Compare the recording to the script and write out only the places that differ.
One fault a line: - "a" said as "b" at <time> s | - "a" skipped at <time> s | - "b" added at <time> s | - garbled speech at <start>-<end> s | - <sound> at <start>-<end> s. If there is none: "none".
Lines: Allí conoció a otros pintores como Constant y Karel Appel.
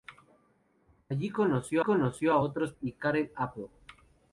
- "conoció" added at 1.8 s
- "pintores como Constant" skipped at 2.7 s